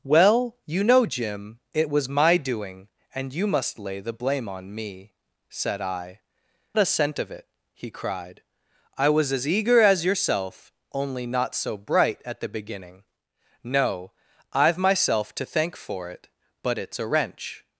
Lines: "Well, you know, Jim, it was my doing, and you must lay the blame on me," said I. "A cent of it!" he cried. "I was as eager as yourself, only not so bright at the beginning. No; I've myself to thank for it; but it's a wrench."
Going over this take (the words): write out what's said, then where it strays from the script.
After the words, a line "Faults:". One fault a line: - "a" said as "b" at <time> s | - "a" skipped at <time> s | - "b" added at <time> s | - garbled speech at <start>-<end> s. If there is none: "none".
"Well, you know, Jim, it was my doing, and you must lay the blame on me," said I. "A cent of it!" he cried. "I was as eager as yourself, only not so bright at the beginning. No; I've myself to thank for it; but it's a wrench."
Faults:
none